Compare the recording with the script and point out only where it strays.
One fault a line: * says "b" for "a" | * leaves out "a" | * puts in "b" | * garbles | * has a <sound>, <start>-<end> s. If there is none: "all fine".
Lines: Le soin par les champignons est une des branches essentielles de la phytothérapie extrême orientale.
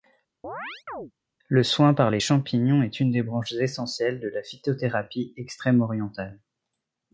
* has a chirp, 0.4-1.1 s